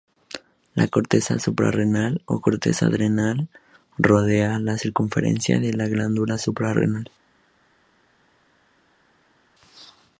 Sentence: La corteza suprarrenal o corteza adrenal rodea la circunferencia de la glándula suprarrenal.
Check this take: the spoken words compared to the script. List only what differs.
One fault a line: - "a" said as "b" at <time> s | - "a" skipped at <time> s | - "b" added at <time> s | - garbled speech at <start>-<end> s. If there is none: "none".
none